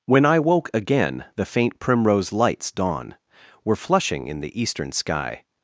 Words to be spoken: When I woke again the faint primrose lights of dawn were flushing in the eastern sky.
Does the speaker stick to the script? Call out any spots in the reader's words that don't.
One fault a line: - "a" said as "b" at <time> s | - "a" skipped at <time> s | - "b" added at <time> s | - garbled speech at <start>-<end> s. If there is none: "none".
- "of" skipped at 2.7 s